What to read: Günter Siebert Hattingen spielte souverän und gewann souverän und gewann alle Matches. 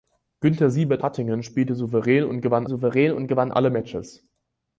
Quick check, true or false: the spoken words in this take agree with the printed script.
true